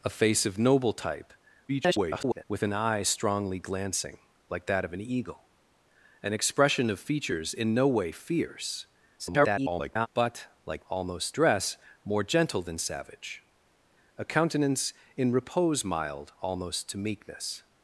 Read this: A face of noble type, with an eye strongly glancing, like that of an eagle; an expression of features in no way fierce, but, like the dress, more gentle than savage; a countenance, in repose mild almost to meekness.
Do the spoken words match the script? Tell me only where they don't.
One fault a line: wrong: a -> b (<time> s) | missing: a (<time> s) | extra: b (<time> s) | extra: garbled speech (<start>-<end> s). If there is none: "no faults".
extra: garbled speech (1.7-2.4 s)
extra: garbled speech (9.2-10.1 s)
wrong: the -> almost (10.9 s)